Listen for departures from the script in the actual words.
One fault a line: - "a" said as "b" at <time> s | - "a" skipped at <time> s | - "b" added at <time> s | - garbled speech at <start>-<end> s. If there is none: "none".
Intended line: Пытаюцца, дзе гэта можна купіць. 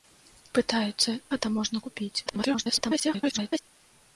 - "дзе" skipped at 1.1 s
- garbled speech at 2.3-3.6 s